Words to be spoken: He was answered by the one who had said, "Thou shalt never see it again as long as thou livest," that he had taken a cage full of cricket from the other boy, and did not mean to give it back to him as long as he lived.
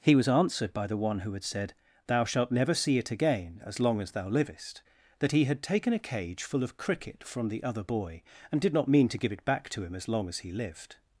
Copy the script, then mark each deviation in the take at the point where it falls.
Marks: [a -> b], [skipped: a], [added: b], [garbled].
He was answered by the one who had said, "Thou shalt never see it again as long as thou livest," that he had taken a cage full of cricket from the other boy, and did not mean to give it back to him as long as he lived.